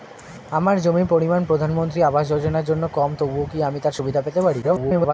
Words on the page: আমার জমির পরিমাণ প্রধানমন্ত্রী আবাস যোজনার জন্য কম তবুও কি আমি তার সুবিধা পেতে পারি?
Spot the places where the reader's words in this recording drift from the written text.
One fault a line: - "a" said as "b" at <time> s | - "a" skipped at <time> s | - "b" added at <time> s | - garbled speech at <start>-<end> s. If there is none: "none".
- garbled speech at 4.6-5.1 s